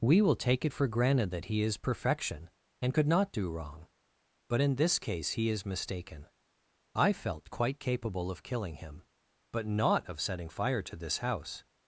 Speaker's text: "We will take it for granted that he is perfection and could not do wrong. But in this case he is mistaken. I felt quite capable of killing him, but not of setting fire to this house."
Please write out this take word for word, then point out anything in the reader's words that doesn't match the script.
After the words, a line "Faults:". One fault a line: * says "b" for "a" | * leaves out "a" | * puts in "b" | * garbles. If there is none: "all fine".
"We will take it for granted that he is perfection and could not do wrong. But in this case he is mistaken. I felt quite capable of killing him, but not of setting fire to this house."
Faults:
all fine